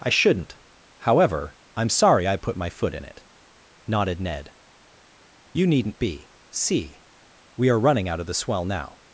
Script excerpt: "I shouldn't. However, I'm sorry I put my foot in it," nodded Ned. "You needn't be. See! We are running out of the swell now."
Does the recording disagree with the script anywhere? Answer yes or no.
no